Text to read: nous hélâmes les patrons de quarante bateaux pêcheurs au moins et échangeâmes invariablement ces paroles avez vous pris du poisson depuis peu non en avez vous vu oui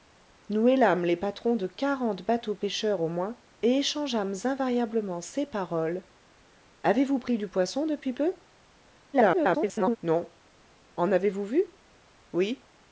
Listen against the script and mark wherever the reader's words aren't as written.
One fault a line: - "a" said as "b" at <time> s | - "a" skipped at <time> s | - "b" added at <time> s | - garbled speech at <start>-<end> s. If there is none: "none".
- garbled speech at 9.1-10.0 s